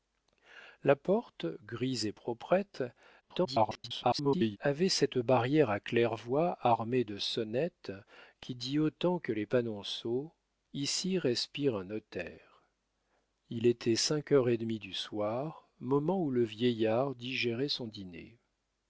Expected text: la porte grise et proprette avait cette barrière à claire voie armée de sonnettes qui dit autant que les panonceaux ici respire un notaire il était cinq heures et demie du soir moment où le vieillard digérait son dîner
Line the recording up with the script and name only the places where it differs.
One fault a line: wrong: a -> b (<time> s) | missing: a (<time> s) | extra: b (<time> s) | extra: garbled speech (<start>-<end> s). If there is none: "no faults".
extra: garbled speech (3.2-4.6 s)